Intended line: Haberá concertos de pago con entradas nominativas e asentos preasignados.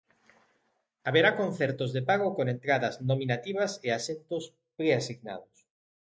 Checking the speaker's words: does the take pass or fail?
pass